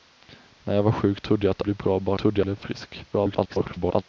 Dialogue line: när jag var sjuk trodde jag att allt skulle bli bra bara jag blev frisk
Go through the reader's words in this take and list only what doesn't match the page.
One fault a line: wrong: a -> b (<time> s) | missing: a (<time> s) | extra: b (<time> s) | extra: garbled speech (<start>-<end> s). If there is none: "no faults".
missing: allt skulle (1.6 s)
wrong: jag -> trodde (2.2 s)
extra: garbled speech (3.1-4.0 s)